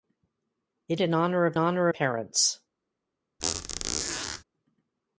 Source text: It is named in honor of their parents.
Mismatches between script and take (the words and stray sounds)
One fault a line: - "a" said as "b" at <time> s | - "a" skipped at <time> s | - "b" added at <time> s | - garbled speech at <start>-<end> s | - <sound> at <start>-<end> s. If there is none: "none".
- "is named" skipped at 1.0 s
- "their" said as "honor" at 1.6 s
- squeak at 3.4-4.4 s